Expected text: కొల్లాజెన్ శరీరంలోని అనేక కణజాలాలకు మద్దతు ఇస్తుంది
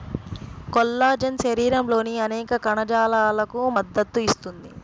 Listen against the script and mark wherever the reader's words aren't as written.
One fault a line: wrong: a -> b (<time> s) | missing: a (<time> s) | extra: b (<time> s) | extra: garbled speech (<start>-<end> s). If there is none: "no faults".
no faults